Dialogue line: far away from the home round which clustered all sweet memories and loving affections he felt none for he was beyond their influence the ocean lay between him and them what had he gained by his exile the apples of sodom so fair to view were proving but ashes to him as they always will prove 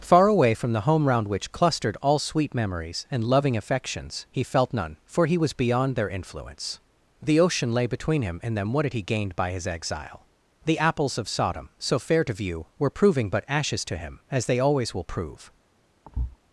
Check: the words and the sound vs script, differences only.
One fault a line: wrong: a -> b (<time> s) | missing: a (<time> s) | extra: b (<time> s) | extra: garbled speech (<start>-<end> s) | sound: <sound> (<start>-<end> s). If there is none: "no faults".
sound: thud (16.0-16.4 s)